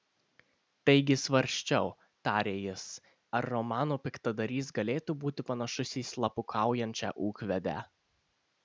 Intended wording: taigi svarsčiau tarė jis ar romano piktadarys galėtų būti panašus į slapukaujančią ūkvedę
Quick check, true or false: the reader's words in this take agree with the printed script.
true